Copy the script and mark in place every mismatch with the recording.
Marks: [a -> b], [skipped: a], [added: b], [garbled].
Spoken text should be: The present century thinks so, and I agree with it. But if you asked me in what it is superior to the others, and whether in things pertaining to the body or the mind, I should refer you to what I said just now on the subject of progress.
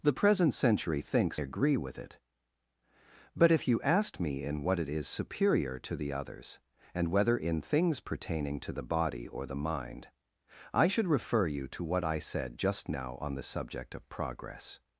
The present century thinks [skipped: so, and I] agree with it. But if you asked me in what it is superior to the others, and whether in things pertaining to the body or the mind, I should refer you to what I said just now on the subject of progress.